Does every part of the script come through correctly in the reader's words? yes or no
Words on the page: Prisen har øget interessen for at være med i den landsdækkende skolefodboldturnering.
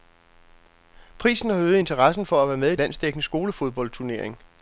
no